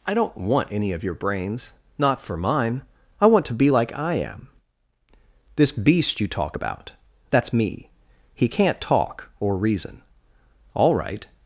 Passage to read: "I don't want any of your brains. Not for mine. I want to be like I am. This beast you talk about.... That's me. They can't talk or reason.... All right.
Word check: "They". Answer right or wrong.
wrong